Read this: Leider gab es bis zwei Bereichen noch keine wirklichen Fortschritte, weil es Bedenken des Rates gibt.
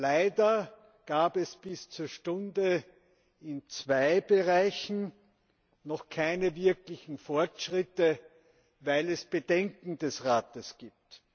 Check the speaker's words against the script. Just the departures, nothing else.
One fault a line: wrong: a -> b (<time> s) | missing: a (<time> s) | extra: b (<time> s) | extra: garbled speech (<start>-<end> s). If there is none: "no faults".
extra: zur Stunde in (1.9 s)